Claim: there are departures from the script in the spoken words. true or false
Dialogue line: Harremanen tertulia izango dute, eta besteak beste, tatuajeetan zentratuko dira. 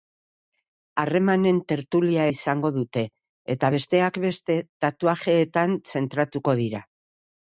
false